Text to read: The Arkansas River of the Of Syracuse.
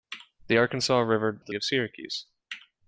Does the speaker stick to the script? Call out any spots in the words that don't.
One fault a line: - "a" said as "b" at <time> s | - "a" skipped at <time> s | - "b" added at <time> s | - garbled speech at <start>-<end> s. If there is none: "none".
none